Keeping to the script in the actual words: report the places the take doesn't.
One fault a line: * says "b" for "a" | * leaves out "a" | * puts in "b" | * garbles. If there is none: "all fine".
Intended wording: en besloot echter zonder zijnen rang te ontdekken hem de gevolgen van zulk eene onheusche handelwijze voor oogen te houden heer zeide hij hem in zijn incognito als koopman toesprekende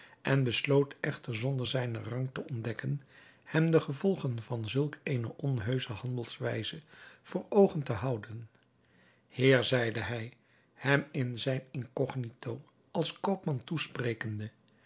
all fine